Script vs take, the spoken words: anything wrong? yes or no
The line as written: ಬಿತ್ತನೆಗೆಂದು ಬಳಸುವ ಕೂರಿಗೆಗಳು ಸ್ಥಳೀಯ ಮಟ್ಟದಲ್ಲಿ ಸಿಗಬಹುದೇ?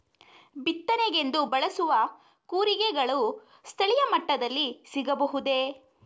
no